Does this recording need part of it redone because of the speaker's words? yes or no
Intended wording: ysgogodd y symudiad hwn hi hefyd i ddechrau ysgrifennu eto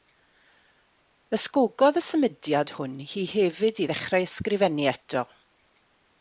no